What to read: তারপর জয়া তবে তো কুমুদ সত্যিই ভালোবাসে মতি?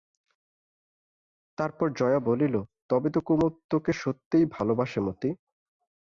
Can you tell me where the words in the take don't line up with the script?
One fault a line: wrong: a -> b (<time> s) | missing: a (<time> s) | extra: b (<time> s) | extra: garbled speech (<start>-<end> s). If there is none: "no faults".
extra: বলিল (2.2 s)
extra: তোকে (3.7 s)